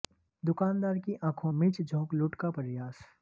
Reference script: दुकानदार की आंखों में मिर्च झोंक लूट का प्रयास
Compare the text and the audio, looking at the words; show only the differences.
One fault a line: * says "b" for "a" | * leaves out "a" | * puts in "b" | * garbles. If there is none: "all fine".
* leaves out "में"